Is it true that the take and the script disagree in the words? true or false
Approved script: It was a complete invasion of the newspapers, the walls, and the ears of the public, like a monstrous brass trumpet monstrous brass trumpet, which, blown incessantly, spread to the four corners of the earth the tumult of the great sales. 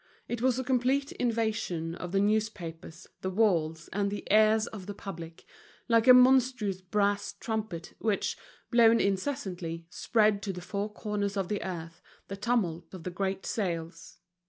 true